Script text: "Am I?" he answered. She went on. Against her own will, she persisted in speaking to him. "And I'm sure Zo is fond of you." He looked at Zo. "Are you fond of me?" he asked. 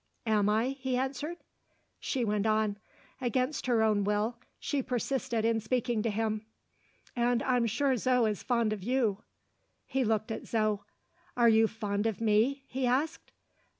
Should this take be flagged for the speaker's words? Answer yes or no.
no